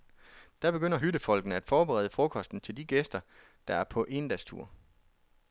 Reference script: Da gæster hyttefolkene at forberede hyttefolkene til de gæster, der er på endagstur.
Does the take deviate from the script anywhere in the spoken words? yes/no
yes